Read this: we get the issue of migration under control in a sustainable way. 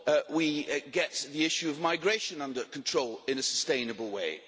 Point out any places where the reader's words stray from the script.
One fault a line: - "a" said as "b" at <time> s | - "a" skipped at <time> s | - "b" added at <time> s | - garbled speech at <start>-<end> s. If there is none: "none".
none